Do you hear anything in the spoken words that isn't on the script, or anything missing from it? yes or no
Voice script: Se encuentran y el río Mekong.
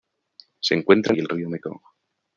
no